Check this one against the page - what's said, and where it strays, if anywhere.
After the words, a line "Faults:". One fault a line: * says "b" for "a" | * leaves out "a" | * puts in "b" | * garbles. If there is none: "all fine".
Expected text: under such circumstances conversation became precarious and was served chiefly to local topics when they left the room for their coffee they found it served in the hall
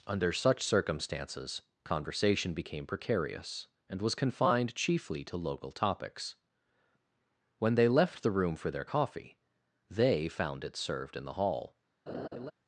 under such circumstances conversation became precarious and was confined chiefly to local topics when they left the room for their coffee they found it served in the hall
Faults:
* says "confined" for "served"